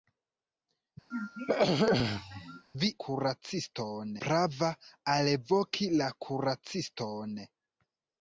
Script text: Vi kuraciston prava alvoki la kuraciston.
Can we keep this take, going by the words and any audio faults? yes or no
no